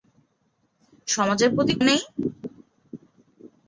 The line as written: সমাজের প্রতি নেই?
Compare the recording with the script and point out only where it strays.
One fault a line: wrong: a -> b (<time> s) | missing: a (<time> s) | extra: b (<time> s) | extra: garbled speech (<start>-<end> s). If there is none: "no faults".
no faults